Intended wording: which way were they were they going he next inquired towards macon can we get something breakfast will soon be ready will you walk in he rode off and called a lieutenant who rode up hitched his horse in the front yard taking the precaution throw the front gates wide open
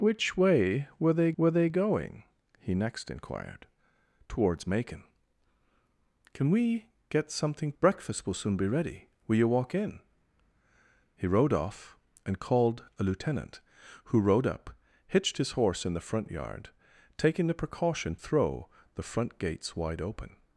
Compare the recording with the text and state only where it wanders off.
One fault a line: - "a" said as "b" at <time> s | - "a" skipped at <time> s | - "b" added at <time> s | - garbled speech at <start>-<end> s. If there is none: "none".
none